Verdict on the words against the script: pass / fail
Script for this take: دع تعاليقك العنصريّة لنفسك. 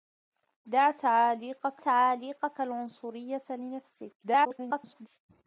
fail